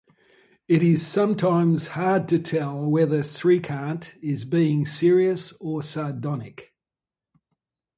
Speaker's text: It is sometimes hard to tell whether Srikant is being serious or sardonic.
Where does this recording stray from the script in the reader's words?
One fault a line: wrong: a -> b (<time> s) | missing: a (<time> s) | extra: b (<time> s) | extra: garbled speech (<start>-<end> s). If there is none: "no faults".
no faults